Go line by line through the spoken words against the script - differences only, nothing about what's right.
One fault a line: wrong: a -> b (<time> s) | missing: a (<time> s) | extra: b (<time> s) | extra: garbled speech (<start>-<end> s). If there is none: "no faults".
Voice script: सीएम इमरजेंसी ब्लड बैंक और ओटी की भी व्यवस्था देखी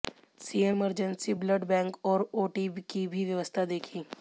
no faults